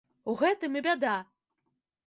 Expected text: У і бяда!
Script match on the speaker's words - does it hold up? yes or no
no